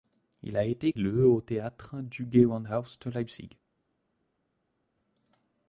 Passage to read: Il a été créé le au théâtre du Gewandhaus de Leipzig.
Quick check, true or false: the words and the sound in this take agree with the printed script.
false